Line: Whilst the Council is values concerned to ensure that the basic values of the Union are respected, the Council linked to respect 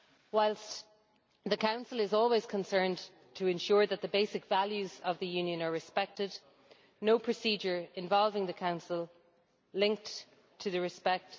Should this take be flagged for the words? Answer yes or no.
yes